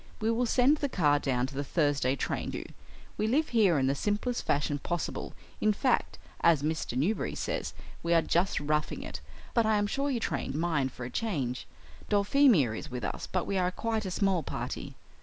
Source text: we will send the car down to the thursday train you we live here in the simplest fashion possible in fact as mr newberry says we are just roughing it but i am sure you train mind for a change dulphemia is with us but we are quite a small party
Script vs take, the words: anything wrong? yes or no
no